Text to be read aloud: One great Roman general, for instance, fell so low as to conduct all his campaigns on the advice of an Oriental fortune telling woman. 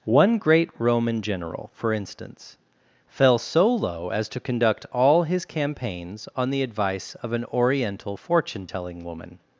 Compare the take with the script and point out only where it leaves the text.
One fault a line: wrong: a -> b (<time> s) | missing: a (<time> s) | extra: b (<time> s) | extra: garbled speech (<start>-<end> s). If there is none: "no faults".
no faults